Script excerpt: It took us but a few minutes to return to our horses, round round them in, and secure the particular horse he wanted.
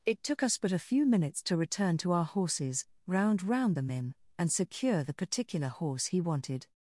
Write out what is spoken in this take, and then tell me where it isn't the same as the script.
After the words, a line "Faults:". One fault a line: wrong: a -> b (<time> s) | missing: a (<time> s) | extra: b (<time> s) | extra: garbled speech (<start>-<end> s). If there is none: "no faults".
It took us but a few minutes to return to our horses, round round them in, and secure the particular horse he wanted.
Faults:
no faults